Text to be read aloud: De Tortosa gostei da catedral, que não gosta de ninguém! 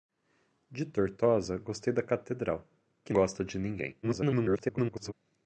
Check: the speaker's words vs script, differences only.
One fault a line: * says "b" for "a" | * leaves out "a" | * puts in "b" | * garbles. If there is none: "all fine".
* leaves out "não"
* garbles